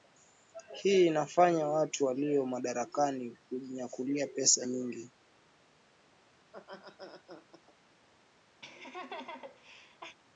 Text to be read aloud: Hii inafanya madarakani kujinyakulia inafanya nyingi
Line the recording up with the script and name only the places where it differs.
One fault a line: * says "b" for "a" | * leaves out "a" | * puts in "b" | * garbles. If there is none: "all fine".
* puts in "watu walio"
* says "pesa" for "inafanya"